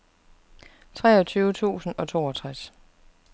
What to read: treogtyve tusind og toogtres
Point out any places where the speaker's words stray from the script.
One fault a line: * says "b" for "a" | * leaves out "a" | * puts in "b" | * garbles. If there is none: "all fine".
all fine